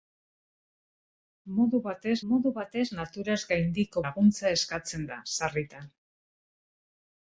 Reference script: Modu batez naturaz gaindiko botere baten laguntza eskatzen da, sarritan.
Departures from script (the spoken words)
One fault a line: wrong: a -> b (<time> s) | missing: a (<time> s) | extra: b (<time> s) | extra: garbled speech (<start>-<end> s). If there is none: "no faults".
extra: modu batez (2.3 s)
missing: botere baten (4.0 s)